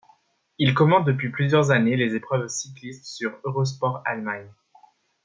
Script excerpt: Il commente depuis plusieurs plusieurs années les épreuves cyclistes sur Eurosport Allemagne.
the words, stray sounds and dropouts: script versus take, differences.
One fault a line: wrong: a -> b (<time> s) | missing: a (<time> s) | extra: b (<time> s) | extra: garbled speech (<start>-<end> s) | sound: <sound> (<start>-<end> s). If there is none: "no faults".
missing: plusieurs (1.7 s)